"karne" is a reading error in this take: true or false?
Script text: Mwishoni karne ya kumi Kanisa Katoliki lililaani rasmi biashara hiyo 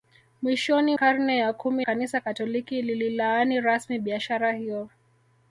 false